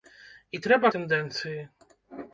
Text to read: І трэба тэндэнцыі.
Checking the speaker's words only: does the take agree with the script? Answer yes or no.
yes